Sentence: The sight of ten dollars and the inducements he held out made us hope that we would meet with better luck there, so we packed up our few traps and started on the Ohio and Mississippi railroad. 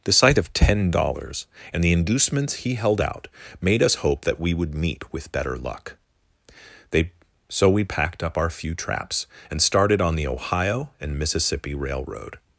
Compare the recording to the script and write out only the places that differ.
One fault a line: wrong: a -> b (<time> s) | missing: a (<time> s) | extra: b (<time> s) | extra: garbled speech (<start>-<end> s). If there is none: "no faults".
wrong: there -> they (6.9 s)